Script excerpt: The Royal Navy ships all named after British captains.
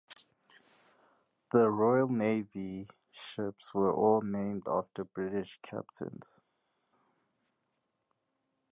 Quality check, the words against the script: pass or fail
fail